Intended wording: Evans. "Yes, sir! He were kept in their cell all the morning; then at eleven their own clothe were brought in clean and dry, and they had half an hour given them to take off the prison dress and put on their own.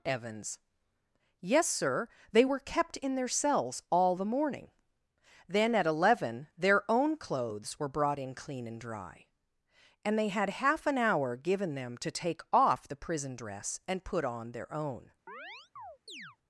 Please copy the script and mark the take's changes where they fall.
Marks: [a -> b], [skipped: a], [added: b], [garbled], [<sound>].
Evans. "Yes, sir! [He -> They] were kept in their [cell -> cells] all the morning; then at eleven their own [clothe -> clothes] were brought in clean and dry, and they had half an hour given them to take off the prison dress and put on their own. [chirp]